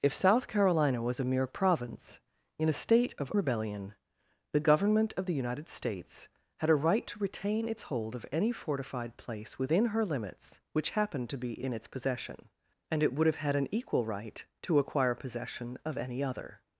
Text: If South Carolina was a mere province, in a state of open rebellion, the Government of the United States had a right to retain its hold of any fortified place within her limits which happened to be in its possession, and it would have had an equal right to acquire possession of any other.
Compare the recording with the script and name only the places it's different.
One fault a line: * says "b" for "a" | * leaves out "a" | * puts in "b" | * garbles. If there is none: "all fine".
* leaves out "open"